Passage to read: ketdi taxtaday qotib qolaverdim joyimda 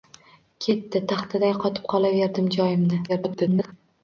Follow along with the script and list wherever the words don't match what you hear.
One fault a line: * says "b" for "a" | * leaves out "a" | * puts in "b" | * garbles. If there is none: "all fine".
* garbles